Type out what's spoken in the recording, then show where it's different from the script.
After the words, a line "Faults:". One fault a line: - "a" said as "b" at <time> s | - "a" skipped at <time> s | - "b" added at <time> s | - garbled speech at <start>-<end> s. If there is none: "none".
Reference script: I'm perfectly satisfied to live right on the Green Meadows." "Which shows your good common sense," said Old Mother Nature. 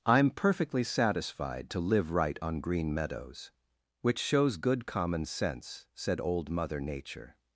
I'm perfectly satisfied to live right on Green Meadows." "Which shows good common sense," said Old Mother Nature.
Faults:
- "the" skipped at 2.6 s
- "your" skipped at 4.6 s